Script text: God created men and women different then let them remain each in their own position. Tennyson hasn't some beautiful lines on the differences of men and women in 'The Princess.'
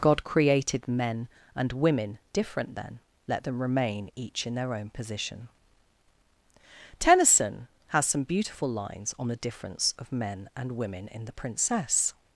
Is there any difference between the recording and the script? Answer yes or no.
yes